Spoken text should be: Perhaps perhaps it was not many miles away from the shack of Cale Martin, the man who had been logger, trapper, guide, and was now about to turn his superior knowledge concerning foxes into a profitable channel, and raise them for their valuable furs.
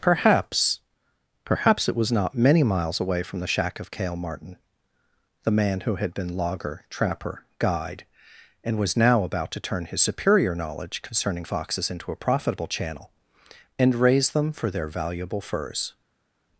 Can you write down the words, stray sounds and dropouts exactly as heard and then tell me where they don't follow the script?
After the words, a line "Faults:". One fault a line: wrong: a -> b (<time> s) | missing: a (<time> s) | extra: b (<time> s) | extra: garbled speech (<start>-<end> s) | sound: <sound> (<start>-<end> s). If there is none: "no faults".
Perhaps perhaps it was not many miles away from the shack of Cale Martin, the man who had been logger, trapper, guide, and was now about to turn his superior knowledge concerning foxes into a profitable channel, and raise them for their valuable furs.
Faults:
no faults